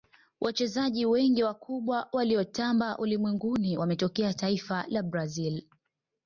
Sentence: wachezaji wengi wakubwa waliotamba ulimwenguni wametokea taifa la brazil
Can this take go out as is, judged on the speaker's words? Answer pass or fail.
pass